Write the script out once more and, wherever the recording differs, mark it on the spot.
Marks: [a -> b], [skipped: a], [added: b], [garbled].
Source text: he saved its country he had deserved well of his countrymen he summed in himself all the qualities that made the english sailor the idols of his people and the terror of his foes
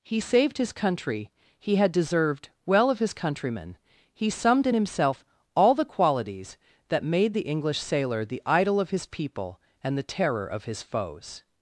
he saved [its -> his] country he had deserved well of his countrymen he summed in himself all the qualities that made the english sailor the [idols -> idol] of his people and the terror of his foes